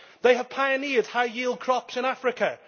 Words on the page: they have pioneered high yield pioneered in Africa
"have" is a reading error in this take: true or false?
false